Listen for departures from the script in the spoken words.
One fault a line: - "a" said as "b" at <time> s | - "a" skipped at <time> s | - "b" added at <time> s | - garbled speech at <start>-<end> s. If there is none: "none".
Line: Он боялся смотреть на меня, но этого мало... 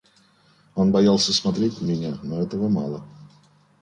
none